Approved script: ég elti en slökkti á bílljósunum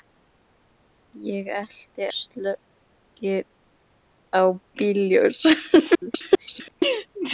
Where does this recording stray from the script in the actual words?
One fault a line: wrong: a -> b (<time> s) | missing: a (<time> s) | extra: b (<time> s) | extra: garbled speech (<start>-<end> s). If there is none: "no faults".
missing: en (2.0 s)
extra: garbled speech (5.9-6.8 s)